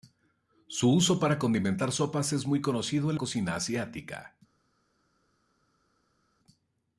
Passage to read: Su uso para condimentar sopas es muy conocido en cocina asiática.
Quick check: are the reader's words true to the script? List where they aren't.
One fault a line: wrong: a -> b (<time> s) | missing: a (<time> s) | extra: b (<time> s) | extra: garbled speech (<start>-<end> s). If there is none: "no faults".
no faults